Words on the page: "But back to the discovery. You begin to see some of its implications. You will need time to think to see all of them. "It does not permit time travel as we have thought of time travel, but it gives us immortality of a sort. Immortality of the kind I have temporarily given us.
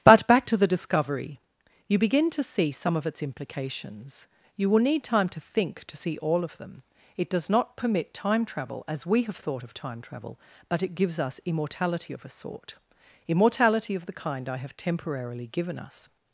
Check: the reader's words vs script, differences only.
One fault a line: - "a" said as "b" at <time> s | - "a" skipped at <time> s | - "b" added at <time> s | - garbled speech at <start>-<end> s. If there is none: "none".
none